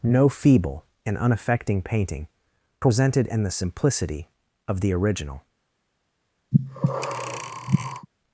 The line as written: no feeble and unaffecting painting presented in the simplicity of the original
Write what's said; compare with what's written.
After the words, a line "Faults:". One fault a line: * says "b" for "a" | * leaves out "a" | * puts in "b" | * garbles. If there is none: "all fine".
no feeble and unaffecting painting presented in the simplicity of the original
Faults:
all fine